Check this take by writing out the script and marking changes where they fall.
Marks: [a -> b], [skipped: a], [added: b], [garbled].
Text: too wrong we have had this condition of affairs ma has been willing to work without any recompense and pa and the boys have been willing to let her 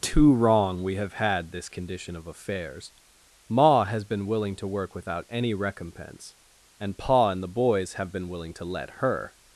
too wrong we have had this condition of affairs ma has been willing to work without any recompense and pa and the boys have been willing to let her